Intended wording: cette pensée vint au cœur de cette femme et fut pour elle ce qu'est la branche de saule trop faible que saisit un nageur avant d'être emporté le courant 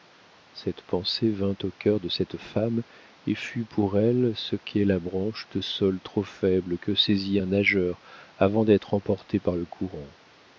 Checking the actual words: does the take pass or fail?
fail